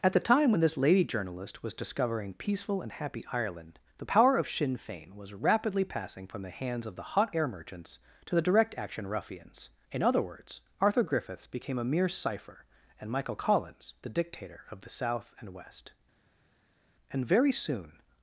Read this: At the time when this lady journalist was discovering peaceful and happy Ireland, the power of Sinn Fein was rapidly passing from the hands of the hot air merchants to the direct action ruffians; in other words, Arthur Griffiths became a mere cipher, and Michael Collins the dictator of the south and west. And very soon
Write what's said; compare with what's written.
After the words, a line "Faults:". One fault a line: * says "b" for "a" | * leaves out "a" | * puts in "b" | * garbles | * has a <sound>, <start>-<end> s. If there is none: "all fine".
At the time when this lady journalist was discovering peaceful and happy Ireland, the power of Sinn Fein was rapidly passing from the hands of the hot air merchants to the direct action ruffians; in other words, Arthur Griffiths became a mere cipher, and Michael Collins the dictator of the south and west. And very soon
Faults:
all fine